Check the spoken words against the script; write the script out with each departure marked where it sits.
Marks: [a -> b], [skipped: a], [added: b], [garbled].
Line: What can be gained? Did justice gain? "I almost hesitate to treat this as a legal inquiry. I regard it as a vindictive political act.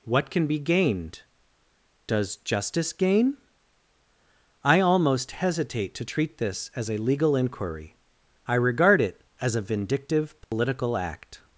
What can be gained? [Did -> Does] justice gain? "I almost hesitate to treat this as a legal inquiry. I regard it as a vindictive political act.